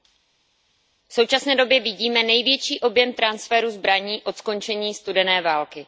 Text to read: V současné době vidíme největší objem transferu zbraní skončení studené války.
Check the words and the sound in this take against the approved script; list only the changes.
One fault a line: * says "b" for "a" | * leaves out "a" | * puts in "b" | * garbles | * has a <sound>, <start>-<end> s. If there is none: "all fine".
* puts in "od"